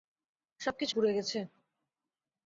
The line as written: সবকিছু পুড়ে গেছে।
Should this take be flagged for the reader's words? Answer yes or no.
no